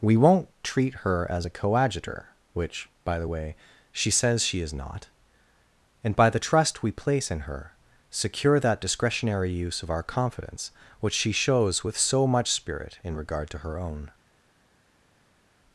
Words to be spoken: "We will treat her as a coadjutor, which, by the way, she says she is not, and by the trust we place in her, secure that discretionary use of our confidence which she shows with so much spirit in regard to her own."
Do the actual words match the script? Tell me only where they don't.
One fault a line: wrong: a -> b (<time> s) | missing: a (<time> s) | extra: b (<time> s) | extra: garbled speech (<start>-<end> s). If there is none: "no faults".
wrong: will -> won't (0.2 s)